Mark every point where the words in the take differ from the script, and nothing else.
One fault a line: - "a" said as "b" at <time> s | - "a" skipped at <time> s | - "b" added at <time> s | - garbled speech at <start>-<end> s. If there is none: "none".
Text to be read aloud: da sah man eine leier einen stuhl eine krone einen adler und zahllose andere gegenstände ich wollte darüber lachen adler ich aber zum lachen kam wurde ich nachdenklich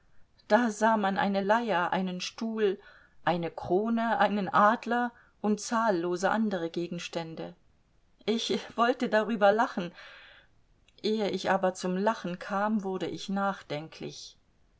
- "adler" said as "ehe" at 11.0 s